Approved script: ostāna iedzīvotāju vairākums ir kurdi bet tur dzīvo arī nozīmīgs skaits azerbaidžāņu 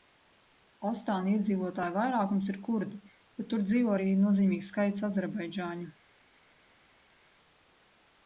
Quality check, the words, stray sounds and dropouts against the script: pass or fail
pass